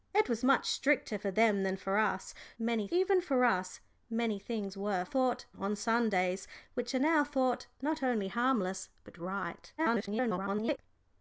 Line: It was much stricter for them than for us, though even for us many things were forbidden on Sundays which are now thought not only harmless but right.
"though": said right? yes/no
no